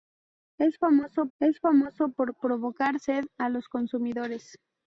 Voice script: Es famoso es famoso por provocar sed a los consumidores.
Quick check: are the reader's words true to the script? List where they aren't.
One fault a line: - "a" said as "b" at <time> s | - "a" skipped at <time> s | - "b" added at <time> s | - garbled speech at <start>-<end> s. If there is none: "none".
none